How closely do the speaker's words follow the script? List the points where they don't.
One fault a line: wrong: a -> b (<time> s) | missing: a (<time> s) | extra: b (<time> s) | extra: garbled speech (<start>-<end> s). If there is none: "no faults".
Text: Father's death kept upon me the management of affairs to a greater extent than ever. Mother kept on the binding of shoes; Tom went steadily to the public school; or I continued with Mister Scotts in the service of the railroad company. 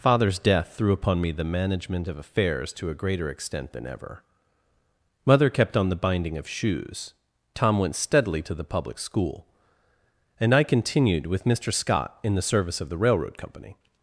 wrong: kept -> threw (0.8 s)
wrong: or -> and (10.4 s)
wrong: Scotts -> Scott (11.7 s)